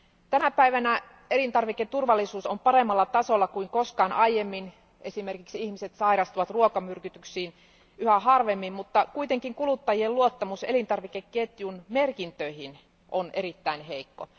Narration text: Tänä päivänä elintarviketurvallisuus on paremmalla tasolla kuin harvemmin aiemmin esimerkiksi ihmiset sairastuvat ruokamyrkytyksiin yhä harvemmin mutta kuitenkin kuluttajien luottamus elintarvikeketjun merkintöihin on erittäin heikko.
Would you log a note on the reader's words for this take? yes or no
yes